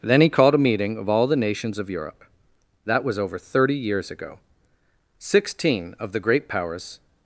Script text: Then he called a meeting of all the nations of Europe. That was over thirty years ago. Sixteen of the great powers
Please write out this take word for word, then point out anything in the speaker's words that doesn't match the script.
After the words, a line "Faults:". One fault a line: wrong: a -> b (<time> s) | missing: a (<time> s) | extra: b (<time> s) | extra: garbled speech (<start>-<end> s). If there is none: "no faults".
Then he called a meeting of all the nations of Europe. That was over thirty years ago. Sixteen of the great powers
Faults:
no faults